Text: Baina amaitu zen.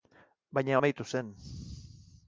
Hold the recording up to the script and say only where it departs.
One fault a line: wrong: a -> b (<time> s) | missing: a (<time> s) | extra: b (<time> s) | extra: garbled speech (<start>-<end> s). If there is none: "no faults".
no faults